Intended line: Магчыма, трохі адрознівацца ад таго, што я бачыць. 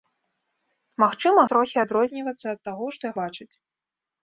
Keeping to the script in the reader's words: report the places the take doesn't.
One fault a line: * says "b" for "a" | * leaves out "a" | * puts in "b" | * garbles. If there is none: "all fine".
all fine